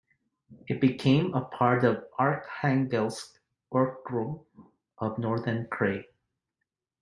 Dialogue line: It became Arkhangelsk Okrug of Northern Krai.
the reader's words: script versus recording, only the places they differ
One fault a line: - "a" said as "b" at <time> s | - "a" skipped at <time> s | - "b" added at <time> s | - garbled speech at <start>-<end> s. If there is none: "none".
- "a part of" added at 1.3 s